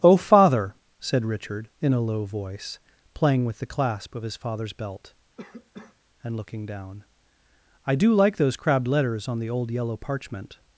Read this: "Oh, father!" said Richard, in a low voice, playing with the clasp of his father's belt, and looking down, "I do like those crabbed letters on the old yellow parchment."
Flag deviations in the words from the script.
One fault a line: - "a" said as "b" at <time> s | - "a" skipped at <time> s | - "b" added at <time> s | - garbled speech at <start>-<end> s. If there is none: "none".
none